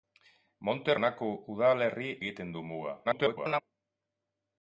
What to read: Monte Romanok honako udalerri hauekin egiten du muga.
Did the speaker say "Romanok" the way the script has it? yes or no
no